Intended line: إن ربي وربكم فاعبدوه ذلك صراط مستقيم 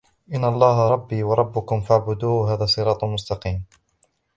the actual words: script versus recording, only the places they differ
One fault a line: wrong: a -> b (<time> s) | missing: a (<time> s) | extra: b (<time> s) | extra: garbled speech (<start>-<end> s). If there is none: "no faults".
extra: الله (0.4 s)
wrong: ذلك -> هذا (2.5 s)